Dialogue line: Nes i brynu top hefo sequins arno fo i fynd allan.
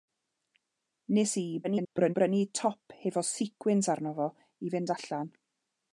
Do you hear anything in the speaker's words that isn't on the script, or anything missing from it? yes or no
yes